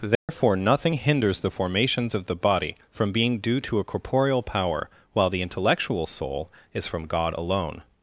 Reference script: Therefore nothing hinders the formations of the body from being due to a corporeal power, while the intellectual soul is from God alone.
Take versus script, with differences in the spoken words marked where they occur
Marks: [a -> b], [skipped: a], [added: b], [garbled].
Therefore nothing hinders the formations of the body from being due to a corporeal power, while the intellectual soul is from God alone.